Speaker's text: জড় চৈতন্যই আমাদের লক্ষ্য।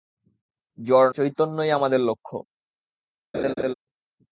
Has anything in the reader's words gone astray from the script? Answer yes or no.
no